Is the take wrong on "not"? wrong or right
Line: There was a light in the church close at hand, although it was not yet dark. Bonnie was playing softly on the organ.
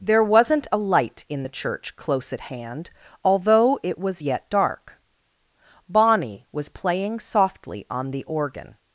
wrong